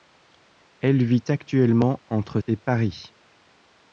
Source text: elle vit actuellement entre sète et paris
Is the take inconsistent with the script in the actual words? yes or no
yes